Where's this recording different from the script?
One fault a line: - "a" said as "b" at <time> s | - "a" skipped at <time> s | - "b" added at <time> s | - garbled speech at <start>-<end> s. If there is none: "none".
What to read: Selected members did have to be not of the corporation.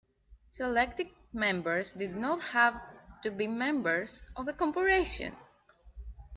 - "not" added at 2.1 s
- "not" said as "members" at 3.5 s